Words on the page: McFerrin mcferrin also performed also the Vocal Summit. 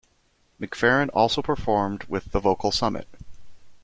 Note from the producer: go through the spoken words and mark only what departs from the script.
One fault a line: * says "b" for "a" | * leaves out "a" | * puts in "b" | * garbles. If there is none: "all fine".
* leaves out "mcferrin"
* says "with" for "also"